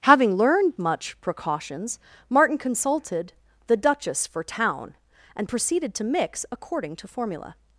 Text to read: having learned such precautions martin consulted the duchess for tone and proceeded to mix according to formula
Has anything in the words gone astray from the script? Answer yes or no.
yes